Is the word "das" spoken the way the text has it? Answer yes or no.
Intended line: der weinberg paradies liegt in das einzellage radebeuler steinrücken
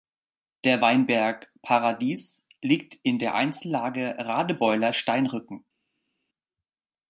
no